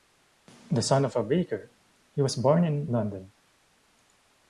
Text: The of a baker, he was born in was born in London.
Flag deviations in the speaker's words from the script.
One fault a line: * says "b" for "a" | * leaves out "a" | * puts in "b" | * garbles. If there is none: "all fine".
* puts in "son"
* leaves out "was born in"